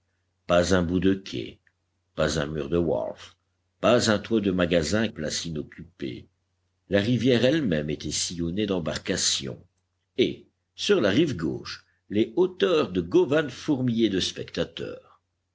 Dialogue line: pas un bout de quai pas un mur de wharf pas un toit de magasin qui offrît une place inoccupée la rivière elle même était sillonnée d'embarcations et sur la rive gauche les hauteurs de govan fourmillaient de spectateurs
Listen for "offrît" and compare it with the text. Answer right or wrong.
wrong